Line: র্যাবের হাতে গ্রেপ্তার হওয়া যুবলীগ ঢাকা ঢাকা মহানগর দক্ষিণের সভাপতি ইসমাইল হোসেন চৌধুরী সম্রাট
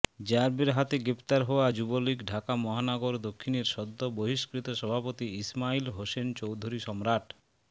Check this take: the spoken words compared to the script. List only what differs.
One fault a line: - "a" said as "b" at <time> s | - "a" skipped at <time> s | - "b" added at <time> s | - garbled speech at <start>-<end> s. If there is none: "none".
- "ঢাকা" skipped at 2.5 s
- "সদ্য বহিষ্কৃত" added at 3.7 s